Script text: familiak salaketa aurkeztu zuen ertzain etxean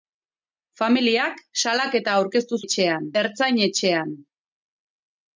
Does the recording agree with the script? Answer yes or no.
no